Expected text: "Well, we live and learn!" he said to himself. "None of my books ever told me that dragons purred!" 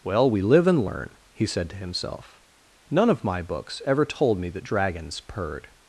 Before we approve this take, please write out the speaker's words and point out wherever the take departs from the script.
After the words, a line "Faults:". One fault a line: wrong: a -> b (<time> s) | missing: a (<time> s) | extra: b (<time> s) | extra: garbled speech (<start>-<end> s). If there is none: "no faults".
"Well, we live and learn!" he said to himself. "None of my books ever told me that dragons purred!"
Faults:
no faults